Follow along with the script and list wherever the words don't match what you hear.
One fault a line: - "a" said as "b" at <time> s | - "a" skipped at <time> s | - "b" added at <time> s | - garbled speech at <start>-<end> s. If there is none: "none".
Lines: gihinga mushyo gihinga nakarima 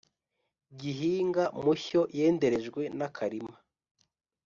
- "gihinga" said as "yenderejwe" at 2.2 s